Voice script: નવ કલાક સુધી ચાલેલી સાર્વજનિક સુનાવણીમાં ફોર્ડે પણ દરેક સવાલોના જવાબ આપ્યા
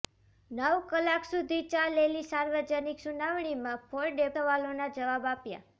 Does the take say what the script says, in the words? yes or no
no